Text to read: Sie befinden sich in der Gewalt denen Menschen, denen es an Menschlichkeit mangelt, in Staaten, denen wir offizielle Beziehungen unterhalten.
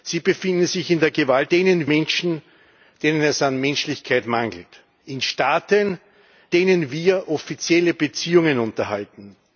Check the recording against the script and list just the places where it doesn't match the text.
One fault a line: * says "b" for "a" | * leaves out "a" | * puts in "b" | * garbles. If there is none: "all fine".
all fine